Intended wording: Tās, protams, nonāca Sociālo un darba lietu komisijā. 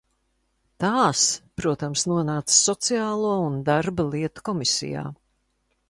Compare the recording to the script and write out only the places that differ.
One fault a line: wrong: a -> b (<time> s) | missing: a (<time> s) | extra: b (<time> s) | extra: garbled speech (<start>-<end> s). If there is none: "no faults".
no faults